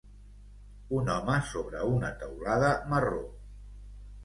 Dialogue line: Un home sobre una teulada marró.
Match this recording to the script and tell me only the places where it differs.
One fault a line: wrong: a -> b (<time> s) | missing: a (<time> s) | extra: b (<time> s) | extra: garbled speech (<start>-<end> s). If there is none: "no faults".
no faults